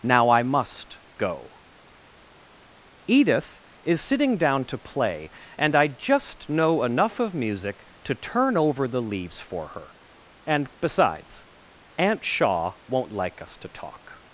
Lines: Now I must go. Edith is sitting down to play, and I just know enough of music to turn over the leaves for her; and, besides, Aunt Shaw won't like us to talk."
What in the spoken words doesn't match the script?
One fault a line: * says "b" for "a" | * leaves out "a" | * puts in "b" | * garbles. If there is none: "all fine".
all fine